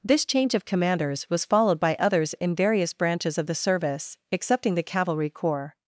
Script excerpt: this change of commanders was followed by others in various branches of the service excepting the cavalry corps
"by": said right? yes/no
yes